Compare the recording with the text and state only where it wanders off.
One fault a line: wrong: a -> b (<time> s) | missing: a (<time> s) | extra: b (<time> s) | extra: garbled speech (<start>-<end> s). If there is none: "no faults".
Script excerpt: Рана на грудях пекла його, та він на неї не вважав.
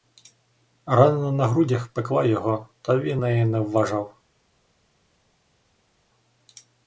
missing: на (3.2 s)